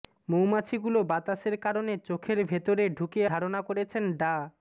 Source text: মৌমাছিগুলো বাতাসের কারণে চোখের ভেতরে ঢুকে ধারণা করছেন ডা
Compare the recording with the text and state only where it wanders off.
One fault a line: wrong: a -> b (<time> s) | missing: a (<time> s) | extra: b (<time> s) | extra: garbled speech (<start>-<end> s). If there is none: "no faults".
no faults